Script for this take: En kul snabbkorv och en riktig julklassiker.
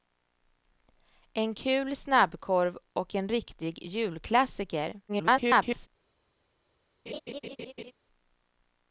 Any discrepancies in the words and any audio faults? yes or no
yes